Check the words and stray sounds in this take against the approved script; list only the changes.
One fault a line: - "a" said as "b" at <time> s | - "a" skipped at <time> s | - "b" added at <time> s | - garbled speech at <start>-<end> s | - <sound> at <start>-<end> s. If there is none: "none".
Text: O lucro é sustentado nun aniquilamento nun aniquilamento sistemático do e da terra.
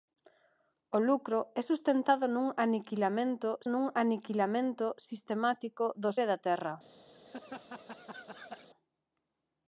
- laugh at 7.1-8.7 s